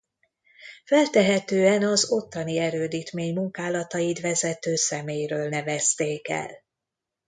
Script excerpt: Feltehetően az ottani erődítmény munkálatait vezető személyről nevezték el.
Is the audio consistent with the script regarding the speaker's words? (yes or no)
yes